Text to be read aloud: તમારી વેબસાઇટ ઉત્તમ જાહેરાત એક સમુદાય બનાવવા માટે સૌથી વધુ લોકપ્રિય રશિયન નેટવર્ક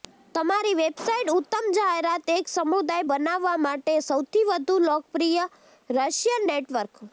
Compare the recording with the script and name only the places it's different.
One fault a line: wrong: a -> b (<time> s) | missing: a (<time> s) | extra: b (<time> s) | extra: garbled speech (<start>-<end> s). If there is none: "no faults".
no faults